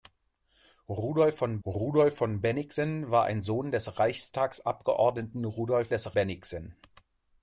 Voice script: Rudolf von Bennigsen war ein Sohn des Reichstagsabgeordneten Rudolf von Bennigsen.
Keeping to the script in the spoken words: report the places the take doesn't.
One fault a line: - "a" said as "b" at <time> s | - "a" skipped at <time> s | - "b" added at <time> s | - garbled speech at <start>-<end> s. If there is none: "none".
- "rudolf von" added at 1.7 s
- "von" said as "des" at 5.9 s